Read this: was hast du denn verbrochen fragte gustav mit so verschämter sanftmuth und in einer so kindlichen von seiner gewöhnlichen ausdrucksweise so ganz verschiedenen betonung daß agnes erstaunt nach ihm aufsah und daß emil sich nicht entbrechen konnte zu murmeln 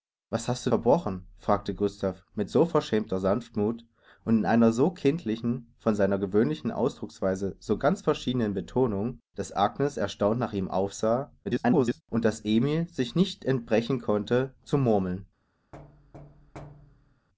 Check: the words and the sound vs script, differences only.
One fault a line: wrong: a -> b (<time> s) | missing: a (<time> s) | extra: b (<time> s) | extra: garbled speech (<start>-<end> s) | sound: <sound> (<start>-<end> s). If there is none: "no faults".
missing: denn (0.7 s)
extra: garbled speech (11.4-12.0 s)
sound: thud (15.7-17.3 s)